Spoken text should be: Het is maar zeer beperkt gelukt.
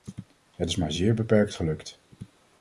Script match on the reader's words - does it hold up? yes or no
yes